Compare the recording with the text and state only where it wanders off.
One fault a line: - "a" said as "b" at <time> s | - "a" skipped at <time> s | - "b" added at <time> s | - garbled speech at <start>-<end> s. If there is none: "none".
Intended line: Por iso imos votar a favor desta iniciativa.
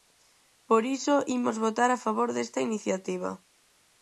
none